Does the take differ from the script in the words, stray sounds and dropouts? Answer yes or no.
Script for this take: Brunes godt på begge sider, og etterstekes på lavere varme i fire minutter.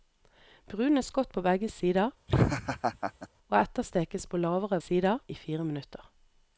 yes